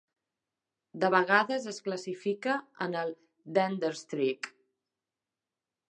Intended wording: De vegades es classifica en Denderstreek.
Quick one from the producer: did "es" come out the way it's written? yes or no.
yes